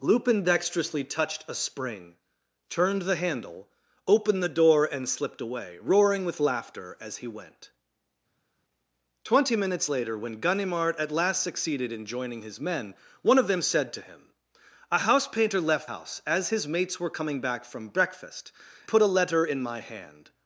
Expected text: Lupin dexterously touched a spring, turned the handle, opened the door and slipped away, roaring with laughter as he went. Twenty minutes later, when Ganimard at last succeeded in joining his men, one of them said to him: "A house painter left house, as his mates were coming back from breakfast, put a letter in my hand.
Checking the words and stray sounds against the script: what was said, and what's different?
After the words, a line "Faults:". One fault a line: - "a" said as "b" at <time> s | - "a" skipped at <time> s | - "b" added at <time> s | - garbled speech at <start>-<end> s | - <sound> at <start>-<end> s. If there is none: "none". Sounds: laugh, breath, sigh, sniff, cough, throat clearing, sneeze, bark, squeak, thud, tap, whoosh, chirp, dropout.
Lupin dexterously touched a spring, turned the handle, opened the door and slipped away, roaring with laughter as he went. Twenty minutes later, when Ganimard at last succeeded in joining his men, one of them said to him: "A house painter left house, as his mates were coming back from breakfast, put a letter in my hand.
Faults:
none